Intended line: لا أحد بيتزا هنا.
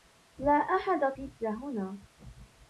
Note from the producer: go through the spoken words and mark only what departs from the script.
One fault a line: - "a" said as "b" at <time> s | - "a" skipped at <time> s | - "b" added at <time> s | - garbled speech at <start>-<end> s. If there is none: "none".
none